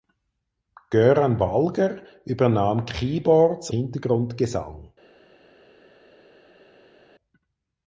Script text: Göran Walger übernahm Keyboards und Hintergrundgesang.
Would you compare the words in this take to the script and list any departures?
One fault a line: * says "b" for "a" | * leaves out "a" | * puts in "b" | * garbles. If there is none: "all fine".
* leaves out "und"